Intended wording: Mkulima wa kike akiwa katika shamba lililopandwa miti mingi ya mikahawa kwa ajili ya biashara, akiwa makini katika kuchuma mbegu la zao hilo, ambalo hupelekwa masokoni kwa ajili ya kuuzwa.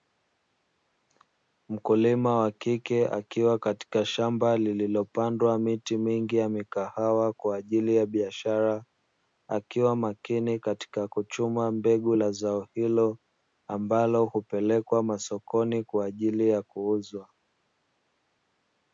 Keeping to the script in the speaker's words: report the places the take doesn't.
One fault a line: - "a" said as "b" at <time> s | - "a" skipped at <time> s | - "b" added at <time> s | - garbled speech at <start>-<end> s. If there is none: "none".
none